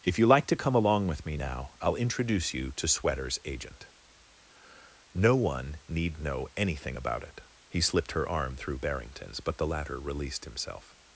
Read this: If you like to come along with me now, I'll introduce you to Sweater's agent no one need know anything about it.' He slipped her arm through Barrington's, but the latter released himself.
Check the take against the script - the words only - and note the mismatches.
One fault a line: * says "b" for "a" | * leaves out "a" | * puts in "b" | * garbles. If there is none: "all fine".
all fine